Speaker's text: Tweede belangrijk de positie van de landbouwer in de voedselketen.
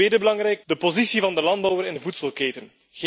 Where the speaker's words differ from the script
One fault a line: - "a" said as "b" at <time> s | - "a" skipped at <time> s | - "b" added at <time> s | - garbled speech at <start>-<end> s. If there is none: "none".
none